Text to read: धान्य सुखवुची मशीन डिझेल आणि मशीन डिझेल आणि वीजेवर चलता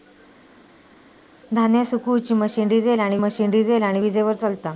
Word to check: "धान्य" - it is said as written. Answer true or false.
true